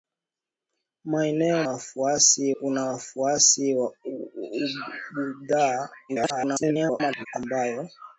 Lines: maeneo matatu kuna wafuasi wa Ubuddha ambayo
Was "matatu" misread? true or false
true